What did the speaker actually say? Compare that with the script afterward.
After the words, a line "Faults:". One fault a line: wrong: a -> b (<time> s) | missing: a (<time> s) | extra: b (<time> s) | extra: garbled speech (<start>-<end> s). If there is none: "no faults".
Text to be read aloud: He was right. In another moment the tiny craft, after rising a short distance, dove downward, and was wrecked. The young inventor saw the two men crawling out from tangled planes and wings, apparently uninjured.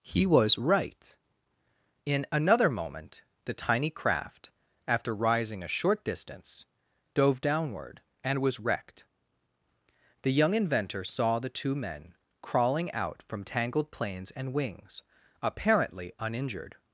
He was right. In another moment the tiny craft, after rising a short distance, dove downward, and was wrecked. The young inventor saw the two men crawling out from tangled planes and wings, apparently uninjured.
Faults:
no faults